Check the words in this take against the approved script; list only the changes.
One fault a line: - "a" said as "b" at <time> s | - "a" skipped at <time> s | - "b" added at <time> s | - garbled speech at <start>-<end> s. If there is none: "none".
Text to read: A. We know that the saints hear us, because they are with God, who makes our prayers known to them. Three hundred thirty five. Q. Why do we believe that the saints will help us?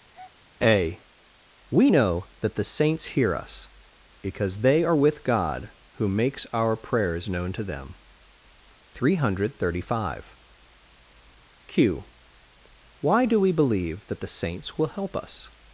none